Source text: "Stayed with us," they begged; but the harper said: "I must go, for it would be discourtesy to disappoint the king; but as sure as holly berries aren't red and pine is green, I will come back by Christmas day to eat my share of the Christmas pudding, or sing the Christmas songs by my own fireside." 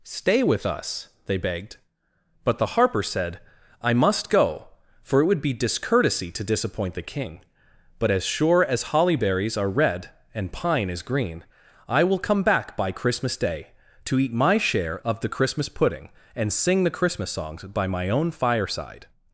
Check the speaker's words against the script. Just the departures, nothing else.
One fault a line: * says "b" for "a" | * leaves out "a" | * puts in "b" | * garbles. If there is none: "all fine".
* says "Stay" for "Stayed"
* says "are" for "aren't"
* says "and" for "or"